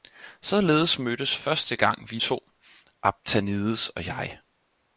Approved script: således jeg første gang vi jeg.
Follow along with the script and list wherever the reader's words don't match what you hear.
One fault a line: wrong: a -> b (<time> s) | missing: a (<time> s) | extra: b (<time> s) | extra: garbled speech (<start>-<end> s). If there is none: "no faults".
wrong: jeg -> mødtes (1.0 s)
extra: to Aphtanides og (2.1 s)